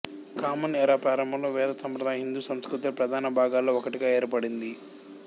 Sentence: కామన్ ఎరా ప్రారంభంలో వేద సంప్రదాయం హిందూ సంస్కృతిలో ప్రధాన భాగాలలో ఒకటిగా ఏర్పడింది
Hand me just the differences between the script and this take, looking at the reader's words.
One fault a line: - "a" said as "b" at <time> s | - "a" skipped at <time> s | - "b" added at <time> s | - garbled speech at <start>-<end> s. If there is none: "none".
none